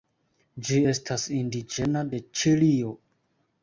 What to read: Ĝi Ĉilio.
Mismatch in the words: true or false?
true